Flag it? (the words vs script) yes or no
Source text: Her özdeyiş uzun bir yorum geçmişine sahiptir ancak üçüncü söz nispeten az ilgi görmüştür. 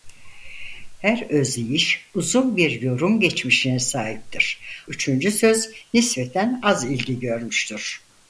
yes